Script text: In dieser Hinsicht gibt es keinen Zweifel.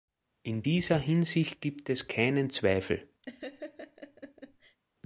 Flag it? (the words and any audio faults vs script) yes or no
yes